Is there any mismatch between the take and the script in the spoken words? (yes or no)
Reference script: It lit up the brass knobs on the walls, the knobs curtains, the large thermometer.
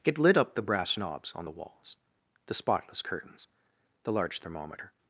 yes